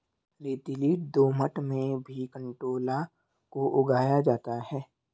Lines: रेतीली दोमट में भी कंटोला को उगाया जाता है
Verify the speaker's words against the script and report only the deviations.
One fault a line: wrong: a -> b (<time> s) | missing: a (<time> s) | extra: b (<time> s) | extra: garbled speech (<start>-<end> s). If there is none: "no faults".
no faults